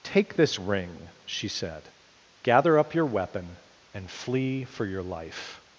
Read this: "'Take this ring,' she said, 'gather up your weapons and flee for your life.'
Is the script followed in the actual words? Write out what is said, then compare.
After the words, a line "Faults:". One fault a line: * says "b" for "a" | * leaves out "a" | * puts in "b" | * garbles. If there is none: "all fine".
"'Take this ring,' she said, 'gather up your weapon and flee for your life.'
Faults:
* says "weapon" for "weapons"